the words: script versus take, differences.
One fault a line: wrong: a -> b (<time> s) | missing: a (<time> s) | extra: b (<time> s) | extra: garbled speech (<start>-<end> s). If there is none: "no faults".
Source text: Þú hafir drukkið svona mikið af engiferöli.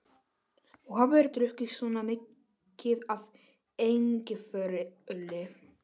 no faults